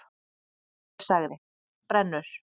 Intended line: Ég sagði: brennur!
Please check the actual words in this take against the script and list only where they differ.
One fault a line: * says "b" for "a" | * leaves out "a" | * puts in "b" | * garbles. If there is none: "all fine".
all fine